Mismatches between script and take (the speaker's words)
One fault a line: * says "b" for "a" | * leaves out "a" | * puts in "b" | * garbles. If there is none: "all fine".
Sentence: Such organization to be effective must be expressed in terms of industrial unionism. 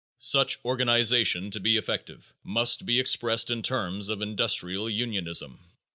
all fine